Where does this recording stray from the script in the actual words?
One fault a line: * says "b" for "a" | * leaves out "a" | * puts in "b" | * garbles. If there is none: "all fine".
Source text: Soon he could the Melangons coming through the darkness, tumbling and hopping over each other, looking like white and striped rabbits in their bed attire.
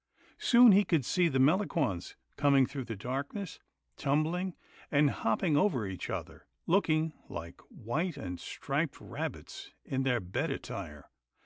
* puts in "see"